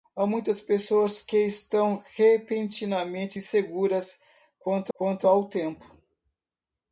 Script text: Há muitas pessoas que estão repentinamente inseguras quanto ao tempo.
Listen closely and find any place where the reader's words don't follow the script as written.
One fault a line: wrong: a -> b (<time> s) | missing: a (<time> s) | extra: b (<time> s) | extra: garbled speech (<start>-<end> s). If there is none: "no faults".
extra: quanto (4.9 s)